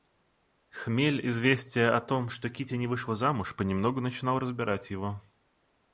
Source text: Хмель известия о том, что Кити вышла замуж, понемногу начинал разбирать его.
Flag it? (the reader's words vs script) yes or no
yes